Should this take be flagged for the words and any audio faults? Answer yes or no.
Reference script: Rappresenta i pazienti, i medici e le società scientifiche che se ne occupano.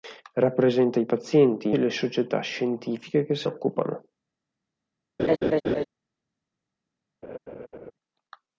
yes